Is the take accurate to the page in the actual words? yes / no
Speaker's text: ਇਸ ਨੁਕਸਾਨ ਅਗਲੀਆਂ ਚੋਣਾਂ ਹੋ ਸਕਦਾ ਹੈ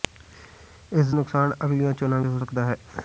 yes